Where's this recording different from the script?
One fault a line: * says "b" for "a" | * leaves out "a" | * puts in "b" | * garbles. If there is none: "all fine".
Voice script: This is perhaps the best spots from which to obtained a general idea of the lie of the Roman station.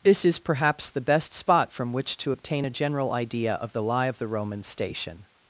* says "spot" for "spots"
* says "obtain" for "obtained"